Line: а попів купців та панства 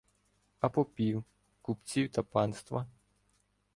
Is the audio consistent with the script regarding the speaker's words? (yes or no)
yes